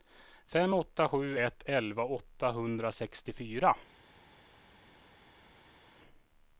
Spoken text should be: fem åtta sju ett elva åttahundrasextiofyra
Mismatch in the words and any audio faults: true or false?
false